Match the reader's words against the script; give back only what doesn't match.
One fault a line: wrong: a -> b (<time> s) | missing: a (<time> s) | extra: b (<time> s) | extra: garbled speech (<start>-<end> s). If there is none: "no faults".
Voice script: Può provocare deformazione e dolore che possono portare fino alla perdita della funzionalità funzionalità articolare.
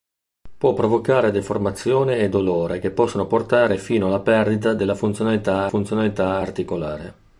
no faults